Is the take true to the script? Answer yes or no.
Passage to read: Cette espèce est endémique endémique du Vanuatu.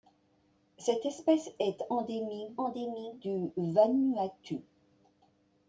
yes